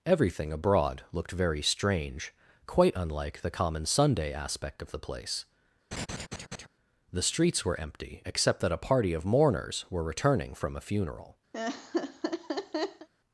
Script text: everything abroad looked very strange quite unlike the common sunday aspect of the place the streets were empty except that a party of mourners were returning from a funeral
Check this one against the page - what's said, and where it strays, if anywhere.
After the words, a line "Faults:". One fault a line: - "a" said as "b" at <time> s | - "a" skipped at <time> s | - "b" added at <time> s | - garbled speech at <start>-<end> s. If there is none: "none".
everything abroad looked very strange quite unlike the common sunday aspect of the place the streets were empty except that a party of mourners were returning from a funeral
Faults:
none